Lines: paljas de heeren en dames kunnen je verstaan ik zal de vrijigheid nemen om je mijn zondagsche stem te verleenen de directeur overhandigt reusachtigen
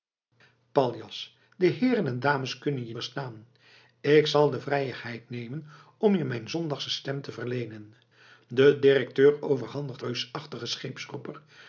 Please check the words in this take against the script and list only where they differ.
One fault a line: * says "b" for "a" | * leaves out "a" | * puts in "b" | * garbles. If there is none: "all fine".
all fine